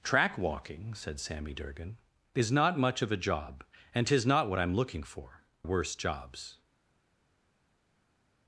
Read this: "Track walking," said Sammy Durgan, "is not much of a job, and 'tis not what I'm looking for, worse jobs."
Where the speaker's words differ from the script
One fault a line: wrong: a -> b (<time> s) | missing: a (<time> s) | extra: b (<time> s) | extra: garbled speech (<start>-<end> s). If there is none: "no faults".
no faults